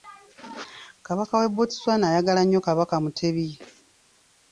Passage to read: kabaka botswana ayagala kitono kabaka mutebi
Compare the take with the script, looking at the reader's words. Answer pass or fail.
fail